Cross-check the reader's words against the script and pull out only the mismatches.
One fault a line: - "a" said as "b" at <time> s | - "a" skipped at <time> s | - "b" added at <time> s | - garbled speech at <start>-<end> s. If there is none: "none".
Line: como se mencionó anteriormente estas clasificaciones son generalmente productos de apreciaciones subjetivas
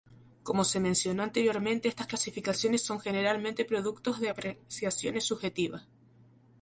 none